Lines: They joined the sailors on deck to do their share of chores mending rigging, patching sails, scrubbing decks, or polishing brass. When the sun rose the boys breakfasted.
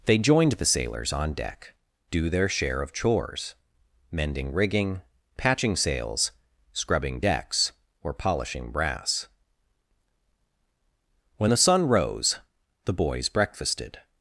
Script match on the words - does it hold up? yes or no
no